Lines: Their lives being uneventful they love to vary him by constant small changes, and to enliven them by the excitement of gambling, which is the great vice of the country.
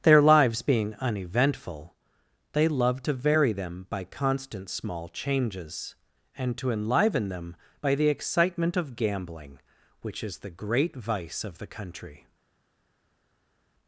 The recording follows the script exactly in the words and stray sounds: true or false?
false